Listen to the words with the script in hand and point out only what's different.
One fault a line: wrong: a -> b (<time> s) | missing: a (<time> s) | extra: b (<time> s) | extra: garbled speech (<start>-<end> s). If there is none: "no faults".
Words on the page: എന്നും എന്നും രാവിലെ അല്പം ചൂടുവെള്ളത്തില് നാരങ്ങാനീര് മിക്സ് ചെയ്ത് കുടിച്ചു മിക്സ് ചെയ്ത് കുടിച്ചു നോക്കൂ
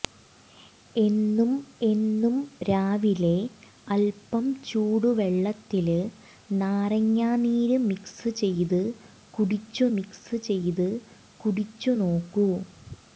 no faults